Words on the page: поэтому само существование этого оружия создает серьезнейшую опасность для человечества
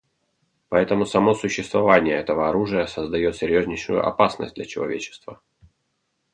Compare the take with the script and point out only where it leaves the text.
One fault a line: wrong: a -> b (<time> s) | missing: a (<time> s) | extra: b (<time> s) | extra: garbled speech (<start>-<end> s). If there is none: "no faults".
no faults